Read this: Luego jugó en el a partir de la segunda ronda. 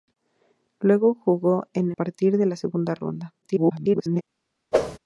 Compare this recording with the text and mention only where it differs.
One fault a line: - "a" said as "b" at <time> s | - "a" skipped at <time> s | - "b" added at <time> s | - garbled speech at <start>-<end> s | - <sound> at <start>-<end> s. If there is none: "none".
- "el a" skipped at 1.9 s
- garbled speech at 3.4-4.2 s
- whoosh at 4.7-5.0 s